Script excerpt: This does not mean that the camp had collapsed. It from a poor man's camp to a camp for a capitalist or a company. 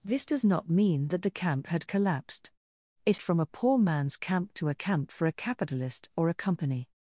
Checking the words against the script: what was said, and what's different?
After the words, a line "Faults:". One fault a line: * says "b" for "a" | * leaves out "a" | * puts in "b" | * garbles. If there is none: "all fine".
This does not mean that the camp had collapsed. It from a poor man's camp to a camp for a capitalist or a company.
Faults:
all fine